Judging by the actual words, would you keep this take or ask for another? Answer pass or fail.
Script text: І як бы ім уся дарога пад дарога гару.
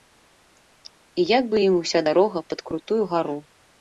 fail